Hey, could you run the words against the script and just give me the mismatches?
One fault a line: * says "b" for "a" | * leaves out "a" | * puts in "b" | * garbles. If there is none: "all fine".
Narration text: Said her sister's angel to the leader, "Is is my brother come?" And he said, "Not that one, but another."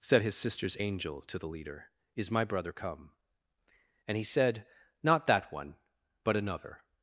* says "his" for "her"
* leaves out "is"